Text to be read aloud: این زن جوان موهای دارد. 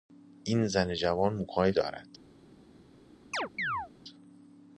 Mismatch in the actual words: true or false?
false